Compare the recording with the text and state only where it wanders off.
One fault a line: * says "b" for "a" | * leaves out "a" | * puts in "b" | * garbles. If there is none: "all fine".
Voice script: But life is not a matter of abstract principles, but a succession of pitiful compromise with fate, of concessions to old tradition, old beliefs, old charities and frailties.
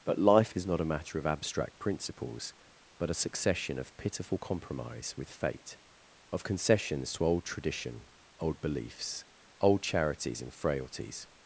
all fine